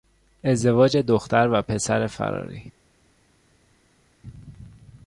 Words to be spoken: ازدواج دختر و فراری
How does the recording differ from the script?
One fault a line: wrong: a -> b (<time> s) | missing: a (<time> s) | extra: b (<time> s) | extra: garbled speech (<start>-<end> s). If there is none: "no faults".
extra: پسر (1.6 s)